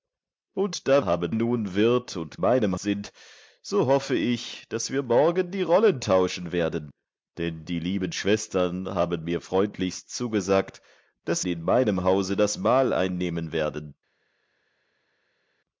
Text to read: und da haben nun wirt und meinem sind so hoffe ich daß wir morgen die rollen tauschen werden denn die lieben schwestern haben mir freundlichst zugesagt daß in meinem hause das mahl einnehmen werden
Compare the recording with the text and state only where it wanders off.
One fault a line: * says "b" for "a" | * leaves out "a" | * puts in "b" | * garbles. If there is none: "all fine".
all fine